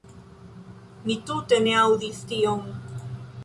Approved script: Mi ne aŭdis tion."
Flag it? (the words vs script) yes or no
yes